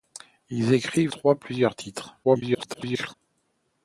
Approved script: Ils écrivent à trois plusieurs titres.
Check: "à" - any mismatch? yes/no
yes